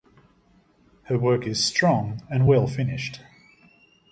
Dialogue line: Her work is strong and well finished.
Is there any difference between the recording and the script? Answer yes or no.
no